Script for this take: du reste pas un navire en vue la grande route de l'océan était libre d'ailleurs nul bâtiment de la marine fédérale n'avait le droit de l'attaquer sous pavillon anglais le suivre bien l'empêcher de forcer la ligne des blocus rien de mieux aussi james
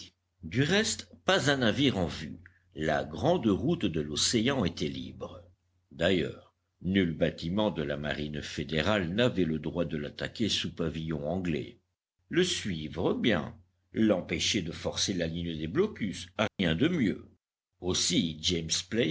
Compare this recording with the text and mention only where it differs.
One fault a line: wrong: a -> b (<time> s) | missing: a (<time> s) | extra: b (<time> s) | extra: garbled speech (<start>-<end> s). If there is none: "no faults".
no faults